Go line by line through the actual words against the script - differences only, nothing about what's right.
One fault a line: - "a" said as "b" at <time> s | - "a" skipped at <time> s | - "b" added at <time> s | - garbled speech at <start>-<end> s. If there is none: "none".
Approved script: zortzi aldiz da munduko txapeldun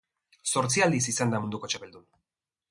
- "izan" added at 1.1 s